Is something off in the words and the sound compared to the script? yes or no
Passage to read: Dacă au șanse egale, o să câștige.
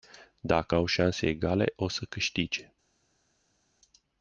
no